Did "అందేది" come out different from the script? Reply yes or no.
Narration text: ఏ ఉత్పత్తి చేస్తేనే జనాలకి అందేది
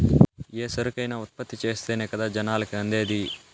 no